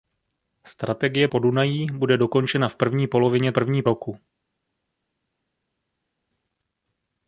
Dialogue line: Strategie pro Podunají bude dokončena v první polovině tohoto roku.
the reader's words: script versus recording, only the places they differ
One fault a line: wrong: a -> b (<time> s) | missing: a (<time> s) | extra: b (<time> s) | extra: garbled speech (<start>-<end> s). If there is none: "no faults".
missing: pro (1.3 s)
wrong: tohoto -> první (3.5 s)